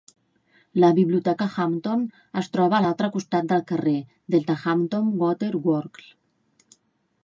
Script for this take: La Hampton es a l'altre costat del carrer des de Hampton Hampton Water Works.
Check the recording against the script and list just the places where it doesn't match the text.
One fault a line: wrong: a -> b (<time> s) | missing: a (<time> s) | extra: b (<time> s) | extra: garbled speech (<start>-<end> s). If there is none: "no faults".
extra: Biblioteca (1.0 s)
extra: troba (2.6 s)
missing: Hampton (5.2 s)